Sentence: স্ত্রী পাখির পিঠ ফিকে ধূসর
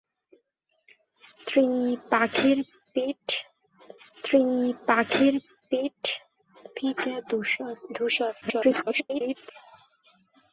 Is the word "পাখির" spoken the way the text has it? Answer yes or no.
yes